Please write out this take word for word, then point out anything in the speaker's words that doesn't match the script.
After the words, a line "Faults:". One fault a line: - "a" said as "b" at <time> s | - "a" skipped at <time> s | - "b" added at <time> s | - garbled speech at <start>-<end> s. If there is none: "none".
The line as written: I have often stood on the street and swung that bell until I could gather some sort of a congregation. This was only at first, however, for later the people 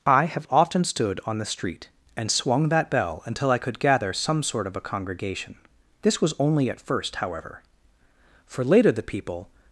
I have often stood on the street and swung that bell until I could gather some sort of a congregation. This was only at first, however, for later the people
Faults:
none